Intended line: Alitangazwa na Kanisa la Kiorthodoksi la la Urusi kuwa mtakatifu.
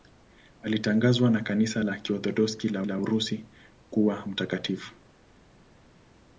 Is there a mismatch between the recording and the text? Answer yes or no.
no